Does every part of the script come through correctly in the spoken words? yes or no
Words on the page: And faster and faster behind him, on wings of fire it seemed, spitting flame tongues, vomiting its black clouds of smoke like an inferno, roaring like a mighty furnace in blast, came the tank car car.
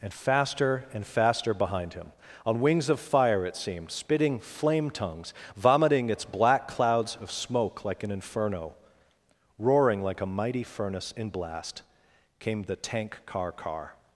yes